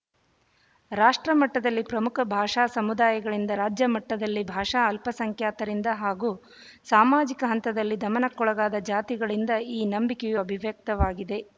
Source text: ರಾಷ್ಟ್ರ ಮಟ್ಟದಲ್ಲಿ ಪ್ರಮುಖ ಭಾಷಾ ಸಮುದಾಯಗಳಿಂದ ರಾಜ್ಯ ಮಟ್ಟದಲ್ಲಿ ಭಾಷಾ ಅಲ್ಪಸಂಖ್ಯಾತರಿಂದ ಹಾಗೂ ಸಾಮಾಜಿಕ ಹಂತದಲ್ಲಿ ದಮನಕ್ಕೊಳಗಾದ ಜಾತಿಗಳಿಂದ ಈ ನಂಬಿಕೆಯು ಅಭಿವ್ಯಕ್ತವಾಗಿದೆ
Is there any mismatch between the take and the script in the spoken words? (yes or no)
no